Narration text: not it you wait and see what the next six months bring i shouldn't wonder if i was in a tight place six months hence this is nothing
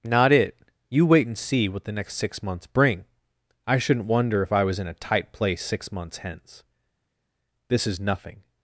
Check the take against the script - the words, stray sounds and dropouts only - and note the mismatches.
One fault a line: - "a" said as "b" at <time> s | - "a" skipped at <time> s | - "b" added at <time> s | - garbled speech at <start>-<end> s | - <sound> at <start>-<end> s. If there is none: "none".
none